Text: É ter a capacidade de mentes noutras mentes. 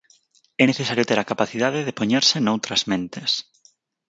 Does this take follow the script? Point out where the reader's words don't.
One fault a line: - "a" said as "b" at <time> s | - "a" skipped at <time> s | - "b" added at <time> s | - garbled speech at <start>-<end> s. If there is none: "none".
- "necesario" added at 0.7 s
- "mentes" said as "poñerse" at 2.0 s